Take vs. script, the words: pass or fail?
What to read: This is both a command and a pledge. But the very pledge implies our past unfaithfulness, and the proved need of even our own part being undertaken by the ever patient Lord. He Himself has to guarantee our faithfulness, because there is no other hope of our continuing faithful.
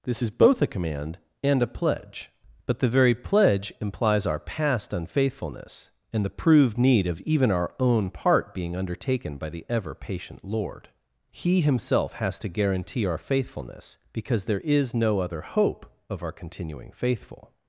pass